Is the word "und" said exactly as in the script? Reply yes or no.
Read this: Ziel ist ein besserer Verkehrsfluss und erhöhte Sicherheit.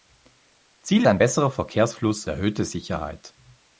no